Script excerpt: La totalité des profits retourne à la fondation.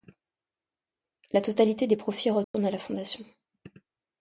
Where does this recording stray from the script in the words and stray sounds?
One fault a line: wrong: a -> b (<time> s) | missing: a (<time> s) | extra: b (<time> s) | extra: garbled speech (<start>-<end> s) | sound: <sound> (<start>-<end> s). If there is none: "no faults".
sound: dropout (2.4-2.5 s)